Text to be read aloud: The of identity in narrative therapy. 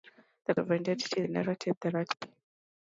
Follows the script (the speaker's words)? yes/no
yes